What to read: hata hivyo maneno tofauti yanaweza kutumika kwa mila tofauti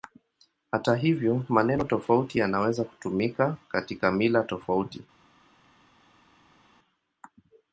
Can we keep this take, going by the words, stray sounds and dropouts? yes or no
no